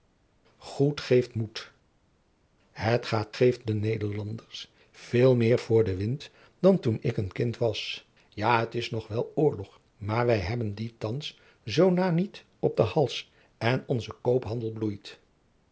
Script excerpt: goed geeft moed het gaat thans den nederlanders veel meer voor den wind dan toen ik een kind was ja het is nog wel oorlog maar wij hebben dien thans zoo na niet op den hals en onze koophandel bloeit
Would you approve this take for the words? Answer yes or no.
no